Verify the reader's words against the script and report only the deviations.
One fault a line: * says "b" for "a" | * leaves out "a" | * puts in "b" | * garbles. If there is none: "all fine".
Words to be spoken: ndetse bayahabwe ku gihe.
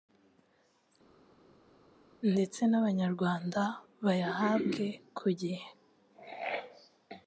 * puts in "n'Abanyarwanda"